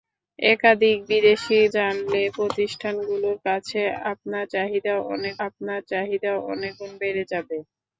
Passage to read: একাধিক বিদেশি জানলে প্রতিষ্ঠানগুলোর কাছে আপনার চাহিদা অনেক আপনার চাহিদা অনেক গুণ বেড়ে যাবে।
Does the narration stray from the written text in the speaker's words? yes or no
no